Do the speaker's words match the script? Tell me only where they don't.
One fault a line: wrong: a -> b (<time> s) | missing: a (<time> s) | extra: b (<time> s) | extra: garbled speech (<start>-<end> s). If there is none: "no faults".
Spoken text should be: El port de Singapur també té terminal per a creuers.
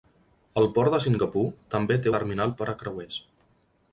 no faults